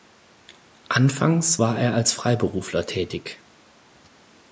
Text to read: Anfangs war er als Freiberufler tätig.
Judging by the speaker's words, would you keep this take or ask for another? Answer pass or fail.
pass